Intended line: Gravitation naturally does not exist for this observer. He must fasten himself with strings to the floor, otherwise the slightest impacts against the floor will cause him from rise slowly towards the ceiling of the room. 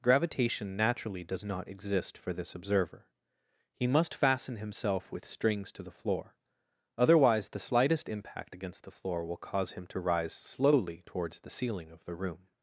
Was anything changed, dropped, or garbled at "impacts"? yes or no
yes